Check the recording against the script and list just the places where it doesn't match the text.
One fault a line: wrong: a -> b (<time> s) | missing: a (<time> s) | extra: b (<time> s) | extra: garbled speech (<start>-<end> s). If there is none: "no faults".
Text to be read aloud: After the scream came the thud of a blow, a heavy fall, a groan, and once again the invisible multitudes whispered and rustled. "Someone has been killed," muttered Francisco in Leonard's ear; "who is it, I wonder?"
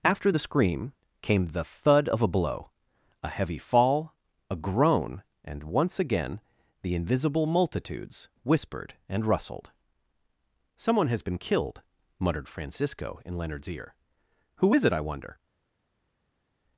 no faults